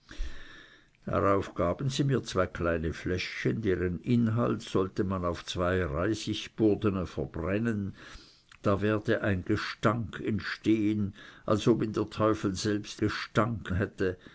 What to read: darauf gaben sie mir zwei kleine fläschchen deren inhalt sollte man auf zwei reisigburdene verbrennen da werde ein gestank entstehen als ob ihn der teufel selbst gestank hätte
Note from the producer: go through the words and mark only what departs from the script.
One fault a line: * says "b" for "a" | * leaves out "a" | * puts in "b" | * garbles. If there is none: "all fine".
all fine